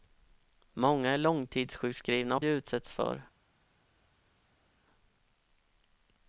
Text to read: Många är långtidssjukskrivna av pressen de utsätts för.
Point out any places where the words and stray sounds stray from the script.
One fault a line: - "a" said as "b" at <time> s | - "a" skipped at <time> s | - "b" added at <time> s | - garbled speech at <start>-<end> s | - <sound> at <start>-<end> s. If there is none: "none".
- "pressen" skipped at 2.4 s